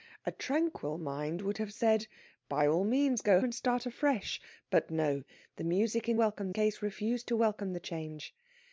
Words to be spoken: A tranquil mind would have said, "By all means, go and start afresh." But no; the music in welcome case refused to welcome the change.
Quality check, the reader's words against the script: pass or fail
pass